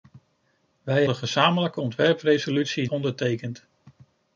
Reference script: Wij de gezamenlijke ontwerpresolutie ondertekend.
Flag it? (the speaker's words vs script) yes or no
no